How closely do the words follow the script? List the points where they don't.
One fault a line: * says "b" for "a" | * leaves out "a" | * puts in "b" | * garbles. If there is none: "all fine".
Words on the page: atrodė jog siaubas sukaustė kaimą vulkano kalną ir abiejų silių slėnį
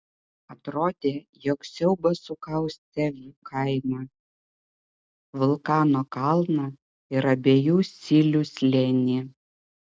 all fine